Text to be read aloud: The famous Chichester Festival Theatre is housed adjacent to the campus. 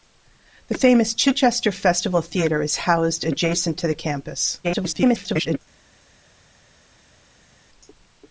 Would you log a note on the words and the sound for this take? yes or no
yes